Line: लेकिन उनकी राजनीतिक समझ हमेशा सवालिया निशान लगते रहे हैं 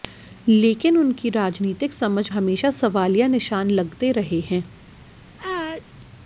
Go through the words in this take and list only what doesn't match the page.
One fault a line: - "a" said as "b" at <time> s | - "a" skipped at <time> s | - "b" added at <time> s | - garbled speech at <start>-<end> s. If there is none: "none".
none